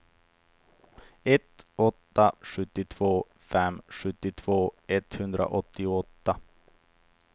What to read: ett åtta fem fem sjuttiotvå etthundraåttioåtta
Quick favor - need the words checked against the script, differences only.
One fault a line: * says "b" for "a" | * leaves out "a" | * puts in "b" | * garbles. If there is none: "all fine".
* says "sjuttiotvå" for "fem"